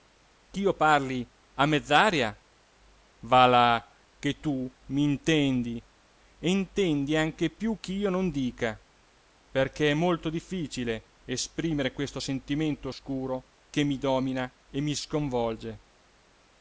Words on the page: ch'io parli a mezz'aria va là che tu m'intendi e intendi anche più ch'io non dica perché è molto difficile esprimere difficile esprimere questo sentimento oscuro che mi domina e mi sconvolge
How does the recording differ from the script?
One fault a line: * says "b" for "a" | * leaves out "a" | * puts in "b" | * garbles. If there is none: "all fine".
* leaves out "difficile esprimere"